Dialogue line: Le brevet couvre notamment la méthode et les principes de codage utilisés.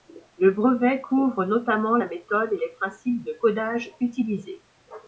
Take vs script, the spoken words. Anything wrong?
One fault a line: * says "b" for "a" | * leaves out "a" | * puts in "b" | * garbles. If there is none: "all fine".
all fine